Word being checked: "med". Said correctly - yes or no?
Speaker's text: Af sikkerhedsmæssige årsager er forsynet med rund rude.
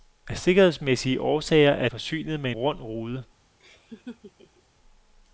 yes